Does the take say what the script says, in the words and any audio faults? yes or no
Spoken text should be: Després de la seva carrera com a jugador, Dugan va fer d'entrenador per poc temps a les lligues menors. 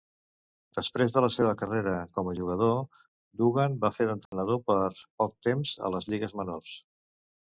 no